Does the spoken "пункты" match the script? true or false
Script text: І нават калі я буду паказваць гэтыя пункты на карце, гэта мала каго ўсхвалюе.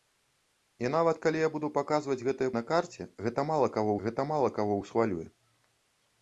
false